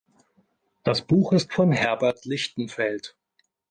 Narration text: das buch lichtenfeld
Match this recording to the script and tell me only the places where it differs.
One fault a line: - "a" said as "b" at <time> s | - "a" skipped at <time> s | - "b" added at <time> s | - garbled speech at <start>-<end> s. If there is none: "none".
- "ist von herbert" added at 1.3 s